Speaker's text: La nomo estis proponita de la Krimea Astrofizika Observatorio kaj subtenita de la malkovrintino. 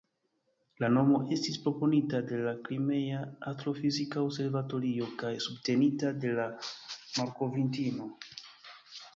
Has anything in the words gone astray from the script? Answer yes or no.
no